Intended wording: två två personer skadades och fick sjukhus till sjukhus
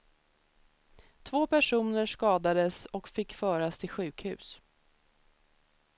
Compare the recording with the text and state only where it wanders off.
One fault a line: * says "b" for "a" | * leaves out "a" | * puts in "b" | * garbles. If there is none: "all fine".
* leaves out "två"
* says "föras" for "sjukhus"